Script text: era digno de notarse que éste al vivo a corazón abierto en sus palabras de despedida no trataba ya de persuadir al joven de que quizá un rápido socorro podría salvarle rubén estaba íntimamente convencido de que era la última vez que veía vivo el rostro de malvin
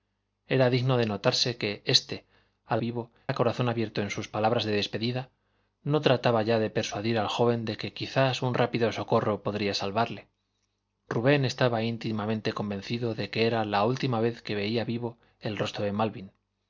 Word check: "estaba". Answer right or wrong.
right